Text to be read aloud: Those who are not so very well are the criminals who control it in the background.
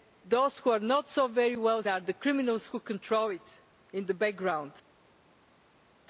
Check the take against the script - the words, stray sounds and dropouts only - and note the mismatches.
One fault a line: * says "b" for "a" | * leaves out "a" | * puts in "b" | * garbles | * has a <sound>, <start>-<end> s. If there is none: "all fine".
all fine